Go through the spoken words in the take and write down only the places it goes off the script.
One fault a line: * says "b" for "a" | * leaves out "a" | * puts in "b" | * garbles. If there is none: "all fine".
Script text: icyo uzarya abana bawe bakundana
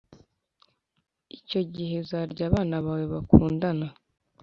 * puts in "gihe"